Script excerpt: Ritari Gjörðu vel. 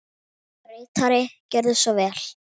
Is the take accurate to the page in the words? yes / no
no